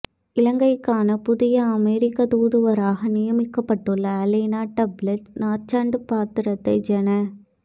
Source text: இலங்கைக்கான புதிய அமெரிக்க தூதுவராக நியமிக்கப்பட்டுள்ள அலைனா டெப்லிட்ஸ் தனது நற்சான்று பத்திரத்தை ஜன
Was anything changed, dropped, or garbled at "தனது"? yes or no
yes